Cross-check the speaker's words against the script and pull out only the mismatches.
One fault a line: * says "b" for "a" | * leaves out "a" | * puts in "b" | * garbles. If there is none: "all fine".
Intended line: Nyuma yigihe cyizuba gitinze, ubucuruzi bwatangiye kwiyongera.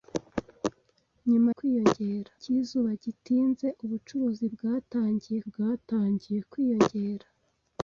* says "kwiyongera" for "yigihe"
* puts in "bwatangiye"